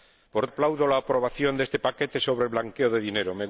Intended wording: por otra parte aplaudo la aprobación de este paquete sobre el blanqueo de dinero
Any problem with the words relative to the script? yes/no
yes